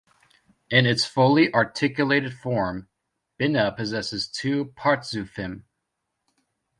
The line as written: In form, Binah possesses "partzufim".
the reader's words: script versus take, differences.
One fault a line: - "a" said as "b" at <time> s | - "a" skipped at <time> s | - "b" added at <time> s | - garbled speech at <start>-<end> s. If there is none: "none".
- "its fully articulated" added at 0.9 s
- "two" added at 4.3 s